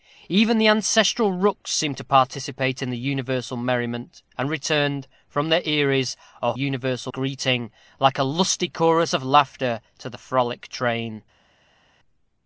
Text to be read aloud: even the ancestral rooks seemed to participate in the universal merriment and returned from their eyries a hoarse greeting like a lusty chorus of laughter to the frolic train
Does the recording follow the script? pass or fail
fail